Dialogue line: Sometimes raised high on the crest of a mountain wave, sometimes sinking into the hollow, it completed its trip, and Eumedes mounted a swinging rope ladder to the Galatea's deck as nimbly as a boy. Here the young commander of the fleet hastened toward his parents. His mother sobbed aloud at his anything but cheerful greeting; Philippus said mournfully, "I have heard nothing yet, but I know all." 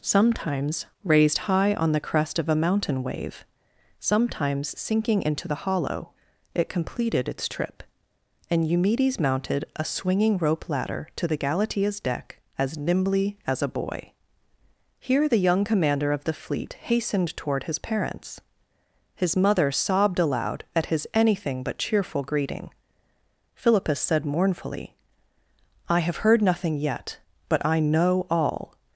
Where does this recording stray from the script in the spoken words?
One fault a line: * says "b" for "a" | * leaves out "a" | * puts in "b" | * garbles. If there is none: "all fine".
all fine